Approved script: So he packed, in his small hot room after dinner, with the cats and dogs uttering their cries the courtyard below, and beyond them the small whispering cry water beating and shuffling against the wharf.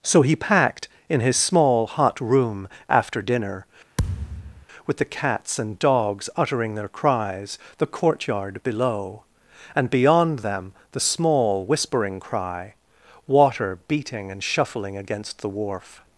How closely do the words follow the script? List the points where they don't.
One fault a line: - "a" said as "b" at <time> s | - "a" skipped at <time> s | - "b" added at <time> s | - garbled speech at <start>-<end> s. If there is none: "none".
none